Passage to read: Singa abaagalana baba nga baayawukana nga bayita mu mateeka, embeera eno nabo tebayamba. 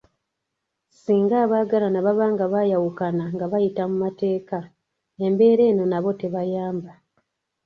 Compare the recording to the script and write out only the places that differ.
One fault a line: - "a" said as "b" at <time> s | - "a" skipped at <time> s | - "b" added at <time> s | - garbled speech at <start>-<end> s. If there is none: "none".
none